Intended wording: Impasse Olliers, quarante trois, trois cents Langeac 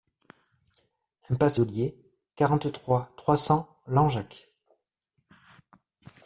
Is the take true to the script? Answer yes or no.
yes